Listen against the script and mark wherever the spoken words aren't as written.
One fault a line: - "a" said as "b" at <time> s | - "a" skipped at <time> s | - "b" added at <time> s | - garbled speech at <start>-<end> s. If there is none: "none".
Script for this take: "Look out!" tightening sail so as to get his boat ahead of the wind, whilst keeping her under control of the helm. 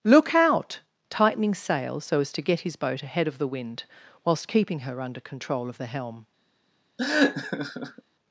none